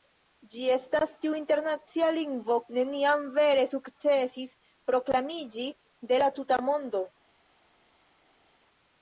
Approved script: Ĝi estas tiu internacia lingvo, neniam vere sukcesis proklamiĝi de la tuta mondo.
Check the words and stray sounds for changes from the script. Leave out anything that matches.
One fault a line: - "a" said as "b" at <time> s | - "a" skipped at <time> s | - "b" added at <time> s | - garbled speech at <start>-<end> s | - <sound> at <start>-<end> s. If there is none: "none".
none